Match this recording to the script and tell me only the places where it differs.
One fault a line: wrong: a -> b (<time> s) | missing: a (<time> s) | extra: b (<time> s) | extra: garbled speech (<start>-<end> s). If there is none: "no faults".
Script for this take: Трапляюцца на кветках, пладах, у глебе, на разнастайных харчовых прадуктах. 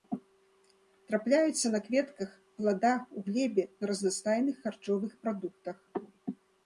no faults